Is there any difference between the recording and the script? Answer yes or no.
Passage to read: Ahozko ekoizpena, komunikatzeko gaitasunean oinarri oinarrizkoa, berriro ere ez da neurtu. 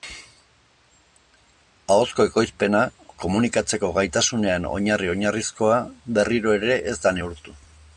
no